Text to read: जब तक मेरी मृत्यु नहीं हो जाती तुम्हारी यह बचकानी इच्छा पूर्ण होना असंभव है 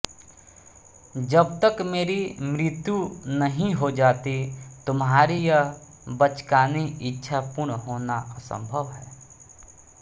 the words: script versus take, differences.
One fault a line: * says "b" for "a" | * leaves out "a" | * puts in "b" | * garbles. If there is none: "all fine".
all fine